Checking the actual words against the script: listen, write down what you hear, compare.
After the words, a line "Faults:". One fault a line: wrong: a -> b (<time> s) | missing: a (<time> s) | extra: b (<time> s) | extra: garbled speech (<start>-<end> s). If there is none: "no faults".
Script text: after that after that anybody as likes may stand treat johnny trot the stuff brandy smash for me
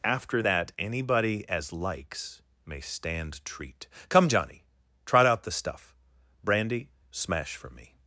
after that anybody as likes may stand treat come johnny trot out the stuff brandy smash for me
Faults:
missing: after that (0.7 s)
extra: come (4.1 s)
extra: out (5.3 s)